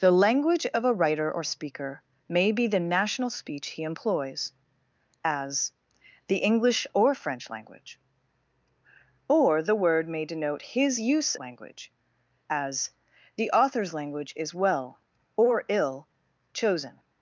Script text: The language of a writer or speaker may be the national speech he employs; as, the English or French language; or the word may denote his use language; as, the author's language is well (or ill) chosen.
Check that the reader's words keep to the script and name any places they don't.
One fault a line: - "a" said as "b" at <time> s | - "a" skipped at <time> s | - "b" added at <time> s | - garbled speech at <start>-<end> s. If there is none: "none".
none